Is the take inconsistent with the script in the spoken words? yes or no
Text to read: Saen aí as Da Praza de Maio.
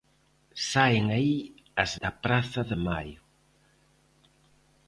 no